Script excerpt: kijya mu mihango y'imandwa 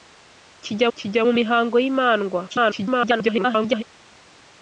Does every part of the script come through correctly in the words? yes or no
no